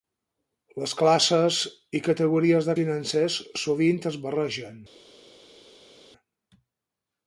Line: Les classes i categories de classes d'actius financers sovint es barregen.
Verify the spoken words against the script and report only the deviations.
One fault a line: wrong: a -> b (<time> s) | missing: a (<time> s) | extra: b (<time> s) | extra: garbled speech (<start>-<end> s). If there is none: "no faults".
missing: classes d'actius (2.8 s)